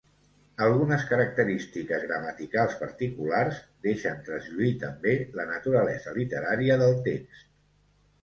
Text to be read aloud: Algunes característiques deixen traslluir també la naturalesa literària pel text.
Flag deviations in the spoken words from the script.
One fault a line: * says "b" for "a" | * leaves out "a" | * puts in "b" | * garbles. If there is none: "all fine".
* puts in "gramaticals particulars"
* says "del" for "pel"